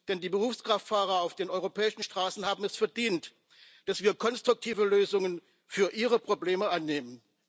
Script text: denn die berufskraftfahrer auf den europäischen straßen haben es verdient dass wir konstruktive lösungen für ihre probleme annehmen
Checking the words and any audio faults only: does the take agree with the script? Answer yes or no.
yes